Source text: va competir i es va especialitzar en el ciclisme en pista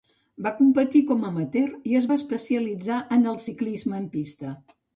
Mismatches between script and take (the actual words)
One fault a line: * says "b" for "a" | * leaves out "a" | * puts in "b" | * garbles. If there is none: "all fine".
* puts in "com amateur"